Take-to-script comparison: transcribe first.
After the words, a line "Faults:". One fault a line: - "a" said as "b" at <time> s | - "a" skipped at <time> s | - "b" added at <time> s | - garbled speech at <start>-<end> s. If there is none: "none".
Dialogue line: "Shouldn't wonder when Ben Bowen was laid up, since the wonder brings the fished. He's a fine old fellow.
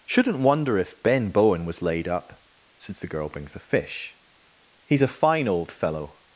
"Shouldn't wonder if Ben Bowen was laid up, since the girl brings the fish. He's a fine old fellow.
Faults:
- "when" said as "if" at 0.8 s
- "wonder" said as "girl" at 3.1 s
- "fished" said as "fish" at 3.6 s